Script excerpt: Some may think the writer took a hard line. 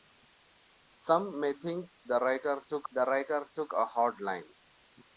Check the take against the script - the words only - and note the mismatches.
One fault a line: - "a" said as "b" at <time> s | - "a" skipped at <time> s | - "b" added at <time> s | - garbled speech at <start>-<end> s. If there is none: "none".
- "the writer took" added at 2.9 s